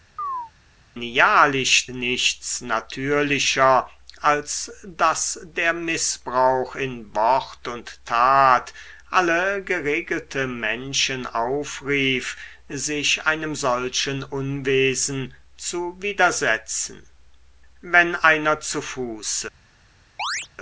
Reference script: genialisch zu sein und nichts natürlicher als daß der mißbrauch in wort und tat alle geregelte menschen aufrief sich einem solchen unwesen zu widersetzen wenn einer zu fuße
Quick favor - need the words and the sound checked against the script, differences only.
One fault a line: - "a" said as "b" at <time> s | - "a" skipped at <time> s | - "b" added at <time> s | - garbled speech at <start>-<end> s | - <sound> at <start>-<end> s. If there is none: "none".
- chirp at 0.2-0.5 s
- "zu sein und" skipped at 1.9 s
- chirp at 20.2-20.5 s